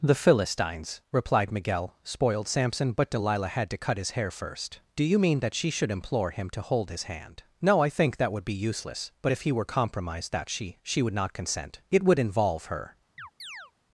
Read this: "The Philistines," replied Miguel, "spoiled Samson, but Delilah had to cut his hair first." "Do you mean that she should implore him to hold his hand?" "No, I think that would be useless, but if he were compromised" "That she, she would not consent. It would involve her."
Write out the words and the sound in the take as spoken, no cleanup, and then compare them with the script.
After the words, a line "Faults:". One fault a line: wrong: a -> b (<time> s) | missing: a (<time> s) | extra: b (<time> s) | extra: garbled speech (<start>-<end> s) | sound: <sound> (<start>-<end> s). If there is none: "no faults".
"The Philistines," replied Miguel, "spoiled Samson, but Delilah had to cut his hair first." "Do you mean that she should implore him to hold his hand?" "No, I think that would be useless, but if he were compromised" "That she, she would not consent. It would involve her."
Faults:
sound: chirp (13.2-13.7 s)